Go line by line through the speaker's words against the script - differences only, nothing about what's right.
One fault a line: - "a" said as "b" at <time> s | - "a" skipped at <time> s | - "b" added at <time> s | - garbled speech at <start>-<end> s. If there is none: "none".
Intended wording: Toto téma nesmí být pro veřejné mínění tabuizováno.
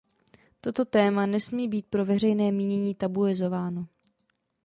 none